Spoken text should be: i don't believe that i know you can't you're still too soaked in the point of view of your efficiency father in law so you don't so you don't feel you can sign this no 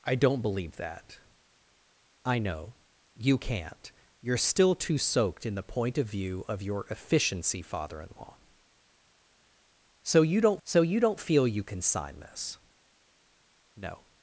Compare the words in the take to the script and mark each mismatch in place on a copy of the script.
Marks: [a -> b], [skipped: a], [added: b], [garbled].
i don't believe that i know you can't you're still too soaked in the point of view of your efficiency father in law so you don't so you don't feel you can sign this no